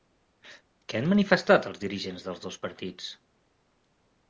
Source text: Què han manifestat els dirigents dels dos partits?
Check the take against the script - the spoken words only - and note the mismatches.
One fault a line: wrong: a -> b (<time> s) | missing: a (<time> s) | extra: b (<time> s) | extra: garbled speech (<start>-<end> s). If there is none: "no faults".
no faults